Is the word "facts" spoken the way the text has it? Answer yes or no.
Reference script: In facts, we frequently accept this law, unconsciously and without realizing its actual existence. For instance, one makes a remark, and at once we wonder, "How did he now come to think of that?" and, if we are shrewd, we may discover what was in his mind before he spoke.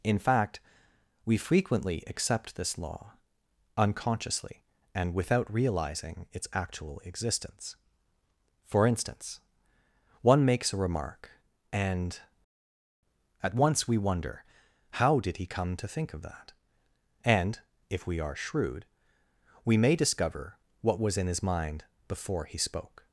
no